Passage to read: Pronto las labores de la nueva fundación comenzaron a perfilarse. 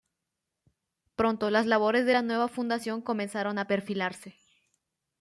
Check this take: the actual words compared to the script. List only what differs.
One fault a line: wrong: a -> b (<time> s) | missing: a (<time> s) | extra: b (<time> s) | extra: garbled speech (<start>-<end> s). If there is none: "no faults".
no faults